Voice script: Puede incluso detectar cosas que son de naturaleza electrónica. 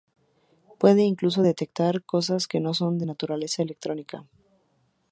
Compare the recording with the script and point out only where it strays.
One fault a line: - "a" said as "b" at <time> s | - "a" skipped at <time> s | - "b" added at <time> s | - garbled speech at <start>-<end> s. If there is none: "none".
- "no" added at 2.6 s